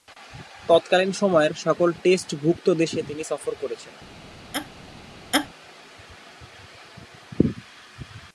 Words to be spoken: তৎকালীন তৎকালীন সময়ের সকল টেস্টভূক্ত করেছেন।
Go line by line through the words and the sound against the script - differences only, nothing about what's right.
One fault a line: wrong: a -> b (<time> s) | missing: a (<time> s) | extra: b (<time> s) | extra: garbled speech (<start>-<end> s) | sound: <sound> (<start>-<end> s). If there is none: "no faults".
missing: তৎকালীন (1.1 s)
extra: দেশে তিনি সফর (2.7 s)
sound: laugh (4.5-4.7 s)
sound: laugh (5.3-5.5 s)